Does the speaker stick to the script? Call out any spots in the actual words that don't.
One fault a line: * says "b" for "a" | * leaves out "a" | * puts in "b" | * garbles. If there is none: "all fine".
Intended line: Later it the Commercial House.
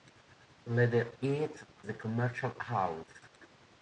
all fine